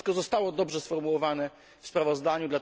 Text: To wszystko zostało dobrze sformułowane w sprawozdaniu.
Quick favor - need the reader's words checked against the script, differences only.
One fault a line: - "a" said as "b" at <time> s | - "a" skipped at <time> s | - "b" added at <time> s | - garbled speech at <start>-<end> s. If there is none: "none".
none